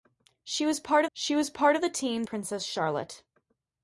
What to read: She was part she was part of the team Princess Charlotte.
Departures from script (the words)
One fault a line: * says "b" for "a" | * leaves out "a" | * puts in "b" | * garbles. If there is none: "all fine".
all fine